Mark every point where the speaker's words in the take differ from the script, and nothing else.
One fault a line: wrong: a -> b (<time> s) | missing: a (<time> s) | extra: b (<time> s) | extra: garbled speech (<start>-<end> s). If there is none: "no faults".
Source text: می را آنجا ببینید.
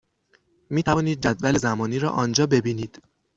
extra: توانید جدول زمانی (0.8 s)